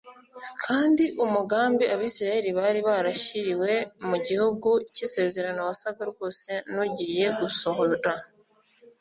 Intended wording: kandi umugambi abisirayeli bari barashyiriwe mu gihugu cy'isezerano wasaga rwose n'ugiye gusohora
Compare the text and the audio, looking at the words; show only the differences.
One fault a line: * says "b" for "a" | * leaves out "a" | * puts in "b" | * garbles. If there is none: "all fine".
all fine